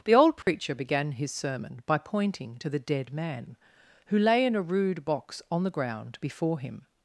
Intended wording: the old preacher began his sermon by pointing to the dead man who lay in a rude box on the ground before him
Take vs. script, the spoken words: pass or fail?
pass